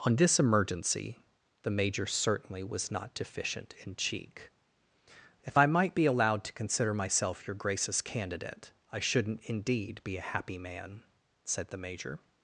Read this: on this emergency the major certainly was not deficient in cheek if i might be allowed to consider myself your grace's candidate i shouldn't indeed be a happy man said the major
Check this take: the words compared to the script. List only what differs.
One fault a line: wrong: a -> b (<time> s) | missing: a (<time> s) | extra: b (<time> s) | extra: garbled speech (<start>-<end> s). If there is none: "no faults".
no faults